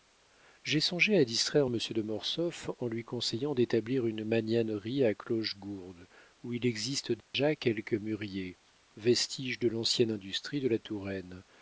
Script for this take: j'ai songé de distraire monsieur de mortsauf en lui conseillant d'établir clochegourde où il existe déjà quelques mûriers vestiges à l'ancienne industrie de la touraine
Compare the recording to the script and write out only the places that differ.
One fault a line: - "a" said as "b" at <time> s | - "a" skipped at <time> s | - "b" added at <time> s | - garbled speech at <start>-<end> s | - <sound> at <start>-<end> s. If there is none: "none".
- "de" said as "à" at 1.1 s
- "une magnanerie à" added at 4.1 s
- dropout at 7.2-7.3 s
- "à" said as "de" at 9.6 s